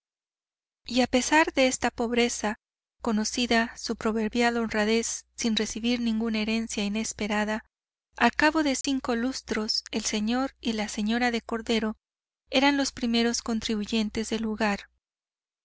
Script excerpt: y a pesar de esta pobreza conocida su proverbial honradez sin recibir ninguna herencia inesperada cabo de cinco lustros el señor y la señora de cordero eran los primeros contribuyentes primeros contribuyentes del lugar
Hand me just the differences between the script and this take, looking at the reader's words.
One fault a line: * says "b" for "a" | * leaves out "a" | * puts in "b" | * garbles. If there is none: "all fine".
* puts in "al"
* leaves out "primeros contribuyentes"